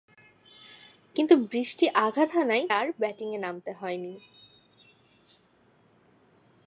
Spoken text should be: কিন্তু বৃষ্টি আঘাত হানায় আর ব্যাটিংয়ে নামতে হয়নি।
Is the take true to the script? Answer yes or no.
yes